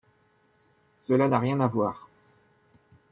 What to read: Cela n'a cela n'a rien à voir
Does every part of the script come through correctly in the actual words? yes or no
no